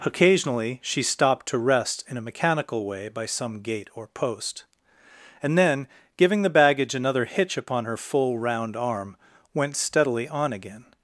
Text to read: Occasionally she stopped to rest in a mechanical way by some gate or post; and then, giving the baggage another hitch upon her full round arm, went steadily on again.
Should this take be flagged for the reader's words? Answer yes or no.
no